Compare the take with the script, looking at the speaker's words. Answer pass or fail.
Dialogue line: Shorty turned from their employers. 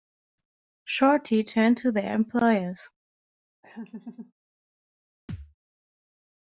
fail